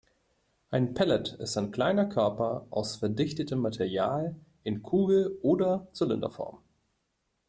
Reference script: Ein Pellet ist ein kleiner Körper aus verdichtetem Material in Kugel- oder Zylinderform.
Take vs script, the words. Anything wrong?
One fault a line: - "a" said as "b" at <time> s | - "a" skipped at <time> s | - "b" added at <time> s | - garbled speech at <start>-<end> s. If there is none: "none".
none